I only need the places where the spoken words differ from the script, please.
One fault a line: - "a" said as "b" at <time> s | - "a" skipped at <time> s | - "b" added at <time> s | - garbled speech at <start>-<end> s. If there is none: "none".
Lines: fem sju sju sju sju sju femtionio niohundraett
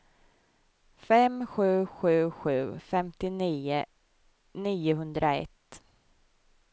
- "sju sju" skipped at 2.5 s